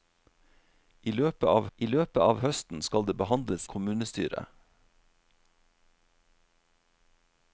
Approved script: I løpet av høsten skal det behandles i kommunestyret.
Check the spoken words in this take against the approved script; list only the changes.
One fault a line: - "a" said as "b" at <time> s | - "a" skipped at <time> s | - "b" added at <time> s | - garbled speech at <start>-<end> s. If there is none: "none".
- "I løpet av" added at 1.8 s
- "i" skipped at 3.7 s